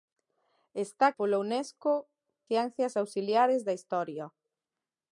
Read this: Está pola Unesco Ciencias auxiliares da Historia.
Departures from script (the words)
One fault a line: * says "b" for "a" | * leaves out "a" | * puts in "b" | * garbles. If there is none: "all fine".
all fine